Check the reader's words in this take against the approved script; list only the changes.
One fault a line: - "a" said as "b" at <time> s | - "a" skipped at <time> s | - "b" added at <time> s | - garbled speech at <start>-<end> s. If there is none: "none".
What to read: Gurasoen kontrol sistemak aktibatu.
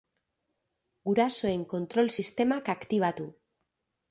none